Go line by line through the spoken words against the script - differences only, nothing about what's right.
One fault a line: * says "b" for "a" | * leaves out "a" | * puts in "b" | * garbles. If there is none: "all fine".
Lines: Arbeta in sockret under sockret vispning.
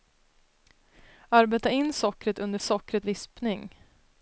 all fine